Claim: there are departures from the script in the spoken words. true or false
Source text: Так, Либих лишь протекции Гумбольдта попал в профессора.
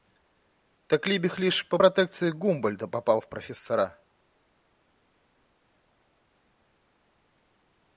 true